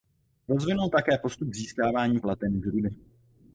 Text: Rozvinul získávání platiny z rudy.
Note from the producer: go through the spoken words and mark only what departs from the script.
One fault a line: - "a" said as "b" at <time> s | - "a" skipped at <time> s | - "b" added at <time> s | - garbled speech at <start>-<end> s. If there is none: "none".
- "také postup" added at 0.9 s